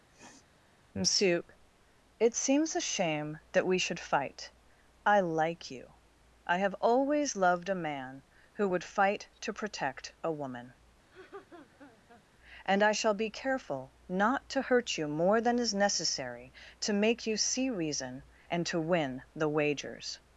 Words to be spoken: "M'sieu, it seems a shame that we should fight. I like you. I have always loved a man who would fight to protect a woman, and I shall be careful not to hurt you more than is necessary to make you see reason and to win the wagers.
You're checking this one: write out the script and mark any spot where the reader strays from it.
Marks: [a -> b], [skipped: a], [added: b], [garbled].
"M'sieu, it seems a shame that we should fight. I like you. I have always loved a man who would fight to protect a woman, and I shall be careful not to hurt you more than is necessary to make you see reason and to win the wagers.